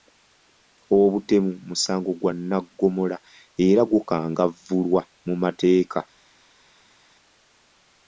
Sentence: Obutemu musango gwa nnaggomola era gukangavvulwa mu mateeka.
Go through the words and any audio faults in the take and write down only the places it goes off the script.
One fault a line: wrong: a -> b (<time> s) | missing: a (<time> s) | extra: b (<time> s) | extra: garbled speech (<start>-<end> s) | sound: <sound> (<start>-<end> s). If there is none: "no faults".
no faults